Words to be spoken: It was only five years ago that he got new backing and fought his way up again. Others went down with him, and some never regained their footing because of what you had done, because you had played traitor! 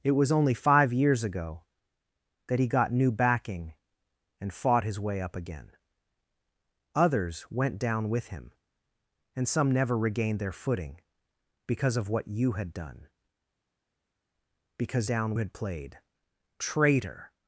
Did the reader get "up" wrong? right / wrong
right